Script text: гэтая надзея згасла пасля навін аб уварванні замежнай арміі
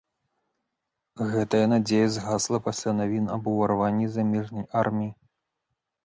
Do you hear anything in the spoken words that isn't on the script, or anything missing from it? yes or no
no